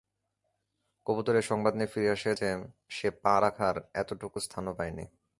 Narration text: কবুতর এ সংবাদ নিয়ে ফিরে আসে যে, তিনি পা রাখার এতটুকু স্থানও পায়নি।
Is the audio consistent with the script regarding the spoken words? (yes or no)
no